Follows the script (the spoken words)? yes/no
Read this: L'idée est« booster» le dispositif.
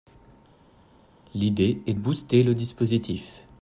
yes